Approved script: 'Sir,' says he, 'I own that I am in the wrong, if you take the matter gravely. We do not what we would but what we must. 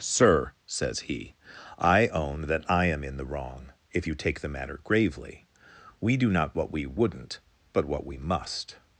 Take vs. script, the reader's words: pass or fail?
fail